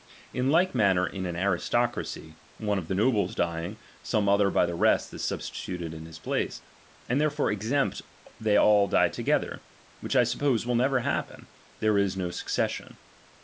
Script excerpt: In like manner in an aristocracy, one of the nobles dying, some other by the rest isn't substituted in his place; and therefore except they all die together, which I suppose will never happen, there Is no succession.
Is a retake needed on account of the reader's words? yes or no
yes